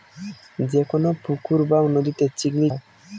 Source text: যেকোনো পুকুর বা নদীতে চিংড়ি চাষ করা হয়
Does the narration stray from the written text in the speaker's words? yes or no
yes